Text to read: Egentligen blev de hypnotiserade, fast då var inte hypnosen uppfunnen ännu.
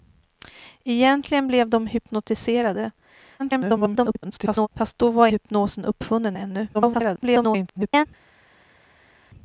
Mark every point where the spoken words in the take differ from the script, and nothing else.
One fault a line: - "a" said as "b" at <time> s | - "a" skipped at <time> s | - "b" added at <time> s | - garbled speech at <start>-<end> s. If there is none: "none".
- garbled speech at 3.4-4.7 s
- "inte" skipped at 5.3 s
- garbled speech at 6.7-8.1 s